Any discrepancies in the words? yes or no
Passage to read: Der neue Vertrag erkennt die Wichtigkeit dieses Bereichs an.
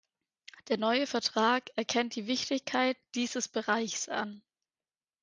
no